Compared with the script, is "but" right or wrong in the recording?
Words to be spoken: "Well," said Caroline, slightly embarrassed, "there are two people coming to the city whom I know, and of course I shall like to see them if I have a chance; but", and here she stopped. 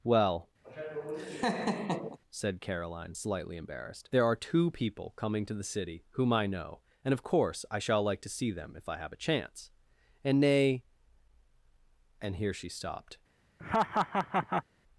wrong